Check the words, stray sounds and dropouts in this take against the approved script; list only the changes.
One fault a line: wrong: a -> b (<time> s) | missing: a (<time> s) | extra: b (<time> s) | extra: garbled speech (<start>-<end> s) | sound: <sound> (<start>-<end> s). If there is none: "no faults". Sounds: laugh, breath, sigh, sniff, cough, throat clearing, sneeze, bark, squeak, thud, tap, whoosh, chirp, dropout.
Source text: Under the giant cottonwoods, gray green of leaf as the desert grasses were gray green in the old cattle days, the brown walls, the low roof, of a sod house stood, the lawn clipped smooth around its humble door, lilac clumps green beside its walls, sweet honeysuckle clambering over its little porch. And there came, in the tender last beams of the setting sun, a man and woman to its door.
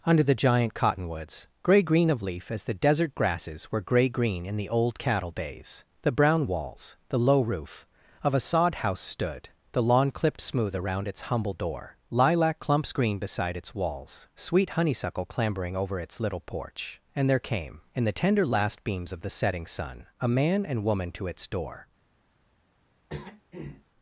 sound: throat clearing (23.1-23.8 s)